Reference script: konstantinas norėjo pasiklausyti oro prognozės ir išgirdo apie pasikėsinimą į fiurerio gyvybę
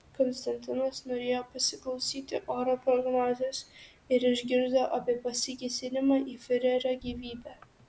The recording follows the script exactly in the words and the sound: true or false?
true